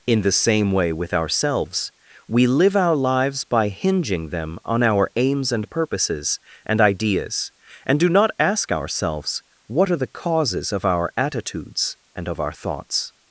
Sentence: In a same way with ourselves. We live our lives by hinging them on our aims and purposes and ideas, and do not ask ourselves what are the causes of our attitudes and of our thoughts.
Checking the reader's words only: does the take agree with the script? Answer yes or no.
no